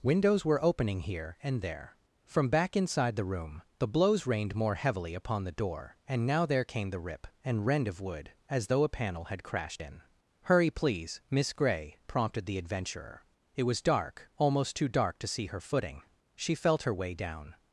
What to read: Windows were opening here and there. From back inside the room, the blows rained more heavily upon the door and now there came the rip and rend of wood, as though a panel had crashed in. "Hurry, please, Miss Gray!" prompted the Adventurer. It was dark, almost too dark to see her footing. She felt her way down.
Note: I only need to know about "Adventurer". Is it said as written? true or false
true